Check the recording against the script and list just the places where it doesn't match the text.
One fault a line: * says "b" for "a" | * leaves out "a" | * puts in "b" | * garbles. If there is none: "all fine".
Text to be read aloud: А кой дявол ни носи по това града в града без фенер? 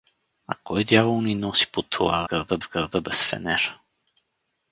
all fine